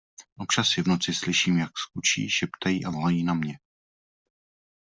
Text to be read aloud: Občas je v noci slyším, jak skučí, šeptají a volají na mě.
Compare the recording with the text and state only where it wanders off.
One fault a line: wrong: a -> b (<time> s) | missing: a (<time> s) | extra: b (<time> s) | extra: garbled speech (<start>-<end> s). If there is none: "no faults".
no faults